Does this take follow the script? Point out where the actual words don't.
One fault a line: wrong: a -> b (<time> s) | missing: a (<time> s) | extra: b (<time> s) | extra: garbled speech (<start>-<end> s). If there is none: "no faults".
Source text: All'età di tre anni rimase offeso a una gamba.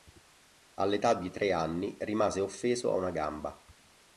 no faults